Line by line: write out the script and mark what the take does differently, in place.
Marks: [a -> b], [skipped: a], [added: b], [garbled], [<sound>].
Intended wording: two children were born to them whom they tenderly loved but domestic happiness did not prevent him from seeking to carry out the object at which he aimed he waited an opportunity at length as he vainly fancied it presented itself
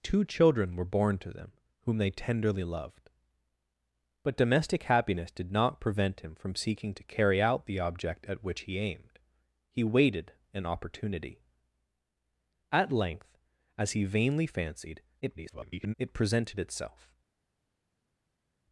two children were born to them whom they tenderly loved but domestic happiness did not prevent him from seeking to carry out the object at which he aimed he waited an opportunity at length as he vainly fancied [garbled] it presented itself